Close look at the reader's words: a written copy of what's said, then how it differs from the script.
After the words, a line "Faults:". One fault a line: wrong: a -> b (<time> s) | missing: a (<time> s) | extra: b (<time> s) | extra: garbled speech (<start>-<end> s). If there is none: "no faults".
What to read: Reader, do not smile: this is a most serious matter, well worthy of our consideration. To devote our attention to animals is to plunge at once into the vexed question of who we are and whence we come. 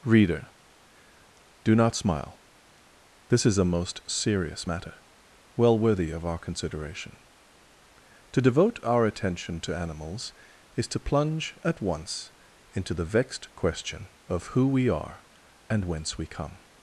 Reader, do not smile: this is a most serious matter, well worthy of our consideration. To devote our attention to animals is to plunge at once into the vexed question of who we are and whence we come.
Faults:
no faults